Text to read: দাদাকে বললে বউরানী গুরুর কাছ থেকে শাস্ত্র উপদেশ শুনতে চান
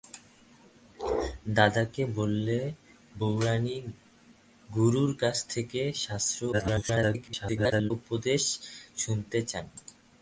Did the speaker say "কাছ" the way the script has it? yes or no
yes